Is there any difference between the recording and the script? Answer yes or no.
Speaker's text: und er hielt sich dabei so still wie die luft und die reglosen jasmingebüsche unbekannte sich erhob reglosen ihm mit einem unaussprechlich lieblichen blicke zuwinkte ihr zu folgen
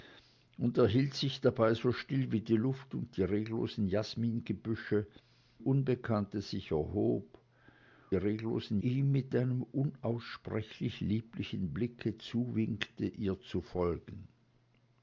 no